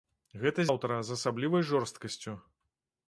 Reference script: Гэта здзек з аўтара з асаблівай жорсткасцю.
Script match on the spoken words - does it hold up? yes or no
no